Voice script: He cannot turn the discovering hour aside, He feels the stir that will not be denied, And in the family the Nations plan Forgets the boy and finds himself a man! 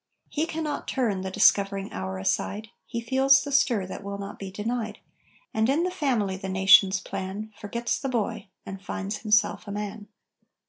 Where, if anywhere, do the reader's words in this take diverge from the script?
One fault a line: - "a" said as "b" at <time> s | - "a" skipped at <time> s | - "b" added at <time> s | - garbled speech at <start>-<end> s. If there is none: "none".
none